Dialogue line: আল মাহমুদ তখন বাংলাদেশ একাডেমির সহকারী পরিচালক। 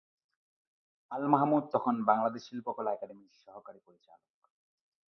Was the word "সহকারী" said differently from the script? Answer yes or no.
no